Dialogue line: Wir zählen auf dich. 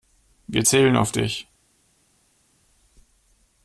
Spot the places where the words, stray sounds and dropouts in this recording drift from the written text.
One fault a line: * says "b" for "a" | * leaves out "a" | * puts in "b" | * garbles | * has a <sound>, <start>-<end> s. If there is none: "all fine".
all fine